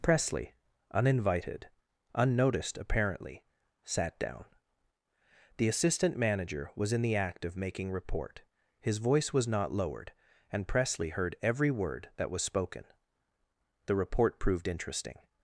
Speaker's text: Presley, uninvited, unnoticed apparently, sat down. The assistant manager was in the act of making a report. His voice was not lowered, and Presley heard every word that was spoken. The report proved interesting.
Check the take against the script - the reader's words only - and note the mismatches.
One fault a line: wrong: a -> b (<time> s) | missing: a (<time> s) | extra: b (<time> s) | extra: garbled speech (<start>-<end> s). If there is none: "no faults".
missing: a (7.9 s)